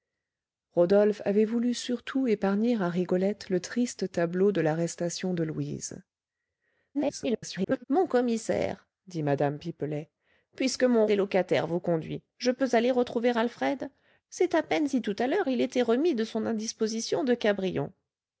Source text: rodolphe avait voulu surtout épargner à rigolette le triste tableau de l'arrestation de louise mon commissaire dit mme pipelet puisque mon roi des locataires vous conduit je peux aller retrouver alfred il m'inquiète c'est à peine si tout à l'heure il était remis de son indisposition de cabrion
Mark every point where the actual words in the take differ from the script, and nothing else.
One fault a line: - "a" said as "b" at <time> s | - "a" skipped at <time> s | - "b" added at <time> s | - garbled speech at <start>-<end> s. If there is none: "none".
- garbled speech at 6.9-7.8 s
- "roi" skipped at 11.1 s
- "il m'inquiète" skipped at 13.9 s